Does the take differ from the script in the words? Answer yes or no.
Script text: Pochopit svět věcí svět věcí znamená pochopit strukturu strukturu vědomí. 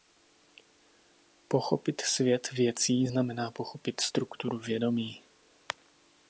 yes